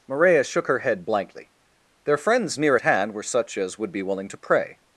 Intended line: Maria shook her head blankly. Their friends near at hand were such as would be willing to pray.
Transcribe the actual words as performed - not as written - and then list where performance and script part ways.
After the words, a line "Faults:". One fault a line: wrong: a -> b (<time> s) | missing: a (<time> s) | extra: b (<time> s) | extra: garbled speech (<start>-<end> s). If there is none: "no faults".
Maria shook her head blankly. Their friends near at hand were such as would be willing to pray.
Faults:
no faults